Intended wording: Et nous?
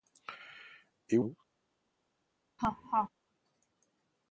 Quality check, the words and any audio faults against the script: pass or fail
fail